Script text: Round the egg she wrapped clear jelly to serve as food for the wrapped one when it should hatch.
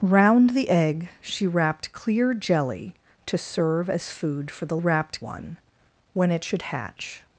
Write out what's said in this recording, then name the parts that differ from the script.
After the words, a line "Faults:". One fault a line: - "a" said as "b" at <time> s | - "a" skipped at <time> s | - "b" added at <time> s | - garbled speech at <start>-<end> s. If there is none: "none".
Round the egg she wrapped clear jelly to serve as food for the wrapped one when it should hatch.
Faults:
none